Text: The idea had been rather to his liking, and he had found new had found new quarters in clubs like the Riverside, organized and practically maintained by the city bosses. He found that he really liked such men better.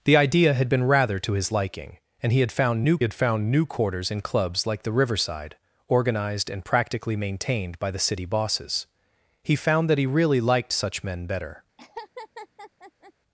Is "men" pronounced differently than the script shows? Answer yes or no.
no